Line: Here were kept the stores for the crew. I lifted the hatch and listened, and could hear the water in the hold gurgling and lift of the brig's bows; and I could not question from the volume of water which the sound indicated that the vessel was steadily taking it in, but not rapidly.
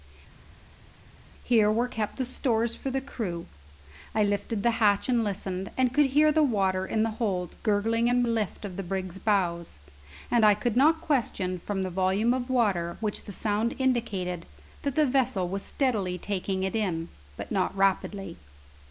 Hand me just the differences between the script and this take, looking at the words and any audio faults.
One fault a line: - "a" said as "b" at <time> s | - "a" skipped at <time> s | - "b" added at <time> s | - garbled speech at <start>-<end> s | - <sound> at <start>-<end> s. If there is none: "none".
none